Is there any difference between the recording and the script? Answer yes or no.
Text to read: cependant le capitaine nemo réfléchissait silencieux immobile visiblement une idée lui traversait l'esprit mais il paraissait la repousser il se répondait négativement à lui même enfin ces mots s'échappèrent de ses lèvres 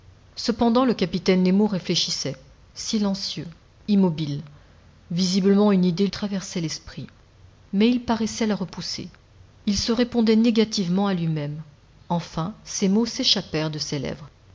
yes